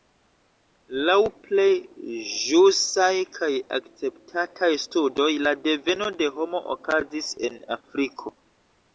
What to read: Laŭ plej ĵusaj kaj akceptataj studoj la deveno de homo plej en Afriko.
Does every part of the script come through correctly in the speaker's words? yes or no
no